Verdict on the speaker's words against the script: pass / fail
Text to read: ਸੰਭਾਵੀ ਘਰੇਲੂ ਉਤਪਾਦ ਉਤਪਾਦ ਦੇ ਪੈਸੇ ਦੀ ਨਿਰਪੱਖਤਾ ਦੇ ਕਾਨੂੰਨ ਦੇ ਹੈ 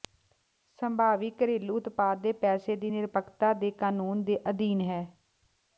fail